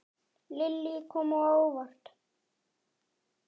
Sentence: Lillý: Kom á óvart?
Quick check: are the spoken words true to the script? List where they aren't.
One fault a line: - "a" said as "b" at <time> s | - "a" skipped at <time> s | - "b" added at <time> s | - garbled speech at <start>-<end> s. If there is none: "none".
none